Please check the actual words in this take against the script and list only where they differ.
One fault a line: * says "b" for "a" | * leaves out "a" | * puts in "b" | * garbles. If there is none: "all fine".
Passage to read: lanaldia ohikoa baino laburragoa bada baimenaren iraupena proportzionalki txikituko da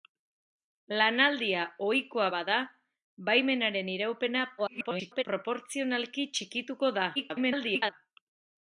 * leaves out "baino laburragoa"
* garbles
* garbles